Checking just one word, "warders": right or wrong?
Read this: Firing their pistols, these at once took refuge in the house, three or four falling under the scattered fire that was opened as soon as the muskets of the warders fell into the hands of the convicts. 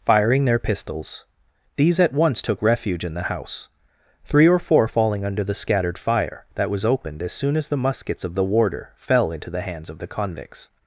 wrong